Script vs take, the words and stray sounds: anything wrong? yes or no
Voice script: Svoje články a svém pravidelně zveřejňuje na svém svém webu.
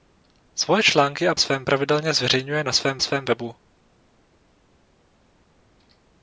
no